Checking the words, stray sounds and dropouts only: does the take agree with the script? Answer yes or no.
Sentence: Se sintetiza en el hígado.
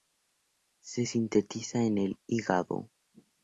yes